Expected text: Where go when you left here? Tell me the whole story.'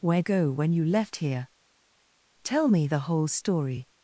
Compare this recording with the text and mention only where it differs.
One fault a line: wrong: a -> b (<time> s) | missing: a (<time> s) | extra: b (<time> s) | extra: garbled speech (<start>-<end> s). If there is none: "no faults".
no faults